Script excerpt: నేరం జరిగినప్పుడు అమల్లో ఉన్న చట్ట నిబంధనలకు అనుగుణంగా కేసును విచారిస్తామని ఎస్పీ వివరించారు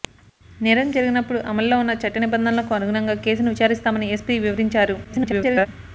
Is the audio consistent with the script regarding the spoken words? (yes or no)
no